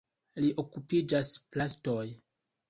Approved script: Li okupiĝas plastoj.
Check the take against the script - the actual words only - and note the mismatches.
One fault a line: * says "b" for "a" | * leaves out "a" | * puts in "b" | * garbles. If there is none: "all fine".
all fine